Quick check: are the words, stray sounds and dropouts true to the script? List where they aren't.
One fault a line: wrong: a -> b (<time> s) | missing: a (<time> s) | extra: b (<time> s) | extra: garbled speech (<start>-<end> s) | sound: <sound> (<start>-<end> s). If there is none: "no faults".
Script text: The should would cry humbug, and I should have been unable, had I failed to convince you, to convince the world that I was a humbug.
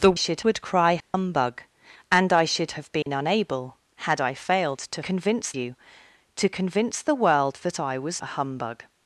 sound: dropout (1.0-1.1 s)
sound: dropout (3.0-3.1 s)